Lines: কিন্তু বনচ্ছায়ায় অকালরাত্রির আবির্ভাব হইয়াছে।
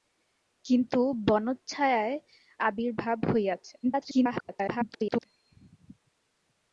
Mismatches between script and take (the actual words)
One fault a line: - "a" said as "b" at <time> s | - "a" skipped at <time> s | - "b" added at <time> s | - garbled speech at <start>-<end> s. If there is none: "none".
- "অকালরাত্রির" skipped at 2.1 s
- garbled speech at 3.8-5.2 s